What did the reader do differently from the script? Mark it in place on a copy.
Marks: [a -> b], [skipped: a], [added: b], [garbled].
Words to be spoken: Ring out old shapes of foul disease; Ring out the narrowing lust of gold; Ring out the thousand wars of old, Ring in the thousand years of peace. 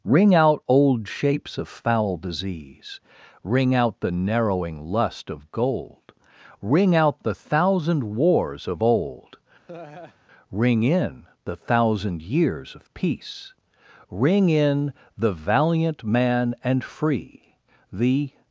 Ring out old shapes of foul disease; Ring out the narrowing lust of gold; Ring out the thousand wars of old, Ring in the thousand years of peace. [added: Ring in the valiant man and free The]